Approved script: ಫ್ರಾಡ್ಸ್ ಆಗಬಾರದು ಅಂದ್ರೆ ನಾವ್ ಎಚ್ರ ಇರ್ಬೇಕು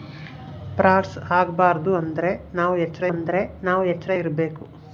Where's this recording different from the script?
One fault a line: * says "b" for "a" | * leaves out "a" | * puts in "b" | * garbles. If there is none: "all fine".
* puts in "ಅಂದ್ರೆ ನಾವ್ ಎಚ್ರ"